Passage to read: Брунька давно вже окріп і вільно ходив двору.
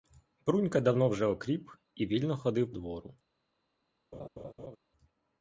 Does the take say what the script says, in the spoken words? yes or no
yes